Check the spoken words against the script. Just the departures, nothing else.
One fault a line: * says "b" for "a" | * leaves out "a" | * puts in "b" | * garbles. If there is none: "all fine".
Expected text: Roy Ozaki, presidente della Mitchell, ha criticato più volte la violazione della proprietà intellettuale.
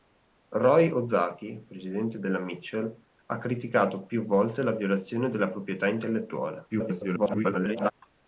* garbles